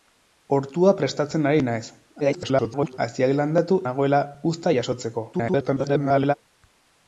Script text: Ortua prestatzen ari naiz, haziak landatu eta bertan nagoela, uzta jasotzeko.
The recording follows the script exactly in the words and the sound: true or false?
false